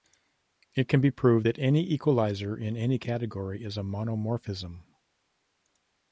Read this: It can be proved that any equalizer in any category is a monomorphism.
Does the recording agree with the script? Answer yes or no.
yes